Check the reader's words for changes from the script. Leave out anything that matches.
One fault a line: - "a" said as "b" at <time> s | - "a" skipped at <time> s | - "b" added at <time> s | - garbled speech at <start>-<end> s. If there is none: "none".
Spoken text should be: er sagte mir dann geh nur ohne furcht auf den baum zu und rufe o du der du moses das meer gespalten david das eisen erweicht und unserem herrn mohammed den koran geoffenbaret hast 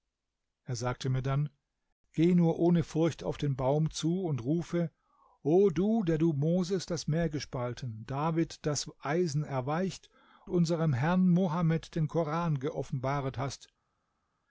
- "und" skipped at 10.1 s